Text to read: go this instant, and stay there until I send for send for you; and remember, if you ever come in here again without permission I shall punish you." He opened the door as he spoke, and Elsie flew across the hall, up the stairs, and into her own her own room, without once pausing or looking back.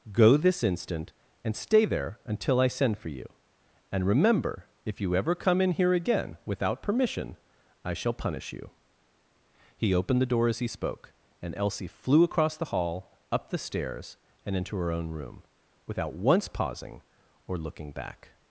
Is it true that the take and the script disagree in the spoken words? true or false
true